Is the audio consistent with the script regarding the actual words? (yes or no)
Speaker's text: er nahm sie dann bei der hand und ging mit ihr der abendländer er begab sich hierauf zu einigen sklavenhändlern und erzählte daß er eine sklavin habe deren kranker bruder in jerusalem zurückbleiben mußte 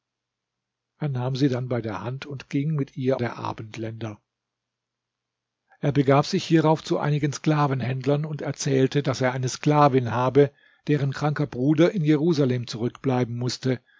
yes